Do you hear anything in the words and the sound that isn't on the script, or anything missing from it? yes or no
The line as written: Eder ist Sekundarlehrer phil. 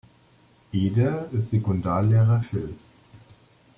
no